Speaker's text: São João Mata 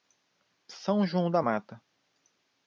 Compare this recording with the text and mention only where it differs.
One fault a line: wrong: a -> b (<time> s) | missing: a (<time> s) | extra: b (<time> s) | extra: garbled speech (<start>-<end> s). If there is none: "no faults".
extra: da (1.3 s)